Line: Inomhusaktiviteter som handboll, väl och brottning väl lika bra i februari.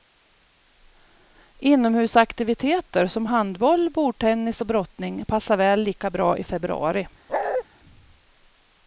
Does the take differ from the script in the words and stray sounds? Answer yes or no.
yes